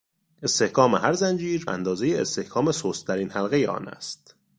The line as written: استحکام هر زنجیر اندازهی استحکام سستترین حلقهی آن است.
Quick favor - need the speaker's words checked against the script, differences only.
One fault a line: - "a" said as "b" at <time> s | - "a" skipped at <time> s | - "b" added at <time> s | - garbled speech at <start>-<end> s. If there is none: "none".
none